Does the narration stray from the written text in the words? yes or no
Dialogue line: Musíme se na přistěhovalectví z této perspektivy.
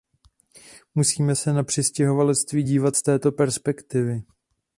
yes